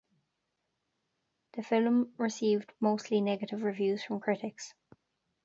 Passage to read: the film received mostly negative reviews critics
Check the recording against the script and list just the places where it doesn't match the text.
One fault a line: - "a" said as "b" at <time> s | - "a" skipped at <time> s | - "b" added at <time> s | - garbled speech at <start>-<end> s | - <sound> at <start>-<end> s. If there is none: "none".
- "from" added at 4.0 s